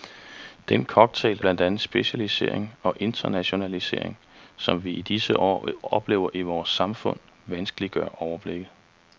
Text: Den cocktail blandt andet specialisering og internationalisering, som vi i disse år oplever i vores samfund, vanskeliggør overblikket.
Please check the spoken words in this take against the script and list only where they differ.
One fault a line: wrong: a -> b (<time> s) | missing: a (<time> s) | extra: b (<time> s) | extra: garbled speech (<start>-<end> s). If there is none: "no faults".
no faults